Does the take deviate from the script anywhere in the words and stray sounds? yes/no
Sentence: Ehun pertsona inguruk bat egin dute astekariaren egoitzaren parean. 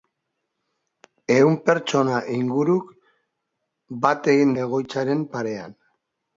yes